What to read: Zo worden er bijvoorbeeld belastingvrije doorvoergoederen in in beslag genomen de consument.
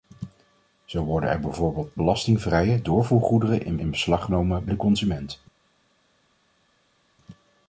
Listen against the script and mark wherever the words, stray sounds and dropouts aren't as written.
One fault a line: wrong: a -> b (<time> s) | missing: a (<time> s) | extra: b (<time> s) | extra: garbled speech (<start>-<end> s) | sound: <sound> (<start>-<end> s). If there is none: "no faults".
no faults